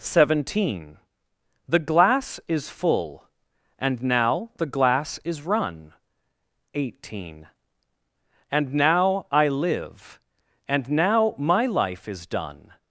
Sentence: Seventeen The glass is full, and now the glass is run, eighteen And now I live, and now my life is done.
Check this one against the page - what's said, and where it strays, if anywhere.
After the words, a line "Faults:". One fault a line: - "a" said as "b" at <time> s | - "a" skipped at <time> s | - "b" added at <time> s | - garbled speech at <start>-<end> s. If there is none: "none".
Seventeen The glass is full, and now the glass is run, eighteen And now I live, and now my life is done.
Faults:
none